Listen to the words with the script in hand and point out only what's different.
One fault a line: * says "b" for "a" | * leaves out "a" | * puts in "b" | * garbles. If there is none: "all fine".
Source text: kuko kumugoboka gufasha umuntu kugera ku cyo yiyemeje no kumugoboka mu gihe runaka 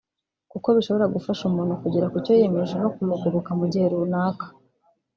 * says "bishobora" for "kumugoboka"